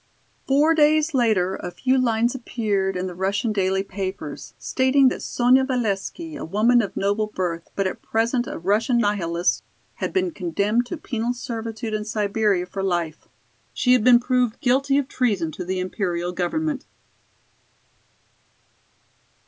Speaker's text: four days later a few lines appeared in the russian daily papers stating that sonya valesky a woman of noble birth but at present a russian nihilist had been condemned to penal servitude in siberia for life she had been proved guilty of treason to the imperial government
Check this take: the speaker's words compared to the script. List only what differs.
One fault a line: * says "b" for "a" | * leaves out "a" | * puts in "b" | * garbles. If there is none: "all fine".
all fine